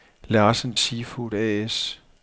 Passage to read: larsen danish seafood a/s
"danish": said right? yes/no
no